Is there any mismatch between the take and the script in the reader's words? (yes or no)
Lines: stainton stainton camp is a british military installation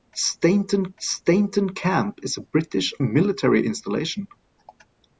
no